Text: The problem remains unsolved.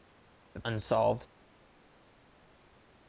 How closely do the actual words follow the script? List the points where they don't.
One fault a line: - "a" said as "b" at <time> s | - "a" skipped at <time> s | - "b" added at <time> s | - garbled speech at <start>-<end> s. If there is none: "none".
- "problem remains" skipped at 0.6 s